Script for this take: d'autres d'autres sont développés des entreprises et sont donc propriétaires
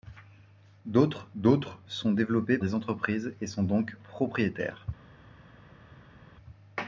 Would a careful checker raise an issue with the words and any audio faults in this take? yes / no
no